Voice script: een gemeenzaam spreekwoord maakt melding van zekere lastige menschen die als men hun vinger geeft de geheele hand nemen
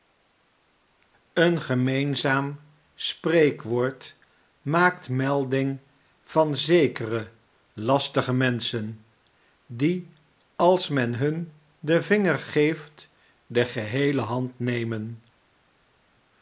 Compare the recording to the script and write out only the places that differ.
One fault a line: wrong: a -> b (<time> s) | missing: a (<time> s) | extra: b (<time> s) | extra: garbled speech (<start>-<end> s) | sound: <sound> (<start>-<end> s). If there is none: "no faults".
extra: den (11.8 s)